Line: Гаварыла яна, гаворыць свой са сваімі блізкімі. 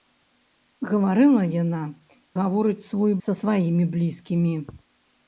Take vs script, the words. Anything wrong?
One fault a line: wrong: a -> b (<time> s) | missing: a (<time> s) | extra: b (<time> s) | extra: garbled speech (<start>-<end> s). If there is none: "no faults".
no faults